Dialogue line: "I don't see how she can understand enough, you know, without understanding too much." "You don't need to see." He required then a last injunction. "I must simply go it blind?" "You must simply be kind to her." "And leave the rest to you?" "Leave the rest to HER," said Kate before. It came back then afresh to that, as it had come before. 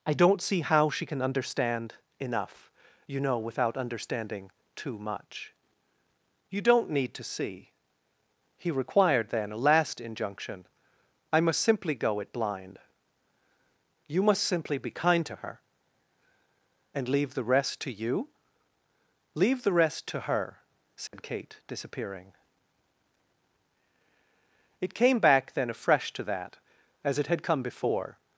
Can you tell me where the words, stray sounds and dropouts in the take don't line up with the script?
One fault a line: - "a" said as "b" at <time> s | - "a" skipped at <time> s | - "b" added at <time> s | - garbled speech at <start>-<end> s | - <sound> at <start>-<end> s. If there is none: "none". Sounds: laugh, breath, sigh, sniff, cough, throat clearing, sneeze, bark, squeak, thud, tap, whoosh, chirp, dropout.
- dropout at 21.1-21.1 s
- "before" said as "disappearing" at 21.7 s